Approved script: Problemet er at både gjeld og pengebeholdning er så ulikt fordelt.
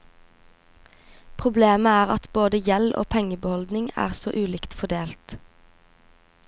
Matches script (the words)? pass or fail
pass